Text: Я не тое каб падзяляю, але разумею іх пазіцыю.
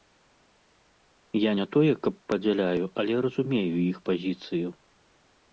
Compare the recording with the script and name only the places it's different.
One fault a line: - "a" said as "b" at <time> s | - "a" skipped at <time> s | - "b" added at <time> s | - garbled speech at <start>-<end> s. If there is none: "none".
none